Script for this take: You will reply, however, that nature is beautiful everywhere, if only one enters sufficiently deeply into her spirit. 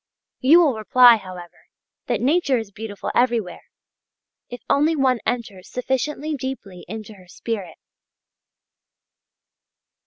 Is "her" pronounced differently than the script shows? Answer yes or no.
no